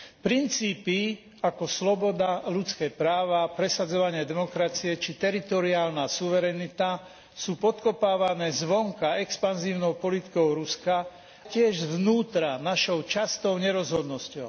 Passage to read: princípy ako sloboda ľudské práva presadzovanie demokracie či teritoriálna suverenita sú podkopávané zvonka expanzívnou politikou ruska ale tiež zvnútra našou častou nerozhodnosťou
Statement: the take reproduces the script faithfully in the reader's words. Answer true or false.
false